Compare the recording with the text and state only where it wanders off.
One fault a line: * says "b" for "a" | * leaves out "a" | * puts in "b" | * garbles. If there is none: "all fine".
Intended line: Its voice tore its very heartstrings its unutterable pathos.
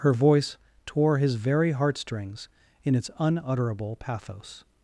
* says "Her" for "Its"
* says "his" for "its"
* puts in "in"